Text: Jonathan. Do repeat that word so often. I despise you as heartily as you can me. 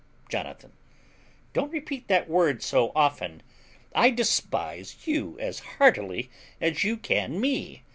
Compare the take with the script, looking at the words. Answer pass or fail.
fail